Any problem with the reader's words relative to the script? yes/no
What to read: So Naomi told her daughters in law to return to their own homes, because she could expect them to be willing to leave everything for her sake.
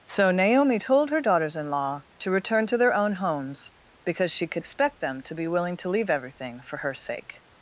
no